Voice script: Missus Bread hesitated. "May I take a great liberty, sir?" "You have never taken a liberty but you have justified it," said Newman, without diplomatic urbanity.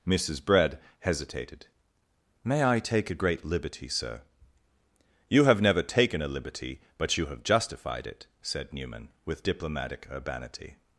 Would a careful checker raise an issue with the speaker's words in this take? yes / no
yes